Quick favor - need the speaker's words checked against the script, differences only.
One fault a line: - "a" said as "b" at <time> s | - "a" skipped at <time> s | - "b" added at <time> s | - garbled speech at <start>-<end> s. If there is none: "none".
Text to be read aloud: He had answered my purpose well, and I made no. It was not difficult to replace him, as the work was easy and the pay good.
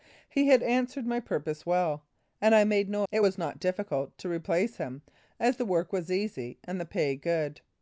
none